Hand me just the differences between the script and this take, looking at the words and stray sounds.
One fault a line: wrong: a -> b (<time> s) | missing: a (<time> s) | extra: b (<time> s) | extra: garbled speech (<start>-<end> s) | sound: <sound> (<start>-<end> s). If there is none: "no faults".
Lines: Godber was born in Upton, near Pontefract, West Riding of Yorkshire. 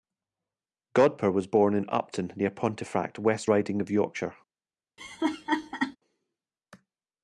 sound: laugh (5.0-6.0 s)